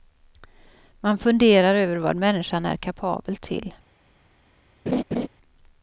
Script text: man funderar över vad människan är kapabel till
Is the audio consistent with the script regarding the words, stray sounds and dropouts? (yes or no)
no